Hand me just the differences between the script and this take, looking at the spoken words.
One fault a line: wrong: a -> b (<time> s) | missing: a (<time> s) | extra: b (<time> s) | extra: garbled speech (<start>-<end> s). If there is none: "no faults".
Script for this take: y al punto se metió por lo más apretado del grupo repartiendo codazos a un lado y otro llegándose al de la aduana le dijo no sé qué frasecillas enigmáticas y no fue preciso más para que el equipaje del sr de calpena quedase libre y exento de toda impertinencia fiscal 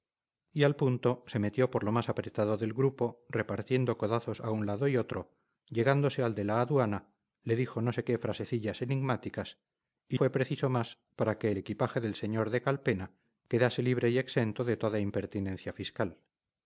missing: no (10.2 s)